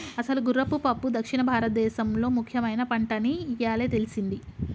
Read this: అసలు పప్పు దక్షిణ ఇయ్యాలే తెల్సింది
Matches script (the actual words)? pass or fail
fail